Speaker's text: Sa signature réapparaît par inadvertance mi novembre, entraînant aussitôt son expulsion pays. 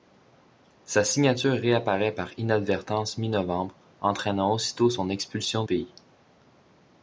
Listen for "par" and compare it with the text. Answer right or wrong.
right